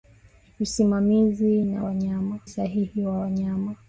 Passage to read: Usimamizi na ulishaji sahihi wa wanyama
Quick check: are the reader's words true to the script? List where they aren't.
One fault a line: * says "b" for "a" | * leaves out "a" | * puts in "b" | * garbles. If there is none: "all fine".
* says "wanyama" for "ulishaji"